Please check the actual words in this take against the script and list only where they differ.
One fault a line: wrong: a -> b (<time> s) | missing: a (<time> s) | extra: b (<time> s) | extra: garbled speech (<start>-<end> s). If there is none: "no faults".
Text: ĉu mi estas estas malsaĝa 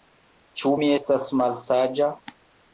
missing: estas (1.3 s)